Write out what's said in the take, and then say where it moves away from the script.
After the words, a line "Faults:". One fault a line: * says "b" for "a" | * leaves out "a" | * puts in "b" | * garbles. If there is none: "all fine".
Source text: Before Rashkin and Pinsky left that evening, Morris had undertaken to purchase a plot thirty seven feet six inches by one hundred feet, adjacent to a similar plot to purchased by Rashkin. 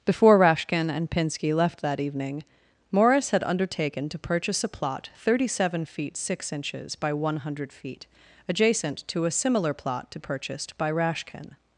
Before Rashkin and Pinsky left that evening, Morris had undertaken to purchase a plot thirty seven feet six inches by one hundred feet, adjacent to a similar plot to purchased by Rashkin.
Faults:
all fine